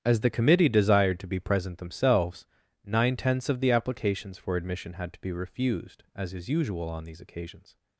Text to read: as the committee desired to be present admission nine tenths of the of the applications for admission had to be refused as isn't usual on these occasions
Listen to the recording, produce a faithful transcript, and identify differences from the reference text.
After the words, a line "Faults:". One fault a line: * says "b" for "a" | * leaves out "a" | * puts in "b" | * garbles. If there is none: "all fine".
as the committee desired to be present themselves nine tenths of the applications for admission had to be refused as is usual on these occasions
Faults:
* says "themselves" for "admission"
* leaves out "of the"
* says "is" for "isn't"